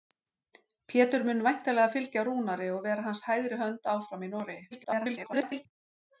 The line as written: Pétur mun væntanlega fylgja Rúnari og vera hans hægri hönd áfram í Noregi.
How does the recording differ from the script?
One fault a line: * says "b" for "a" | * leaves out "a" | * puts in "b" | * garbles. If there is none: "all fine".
* garbles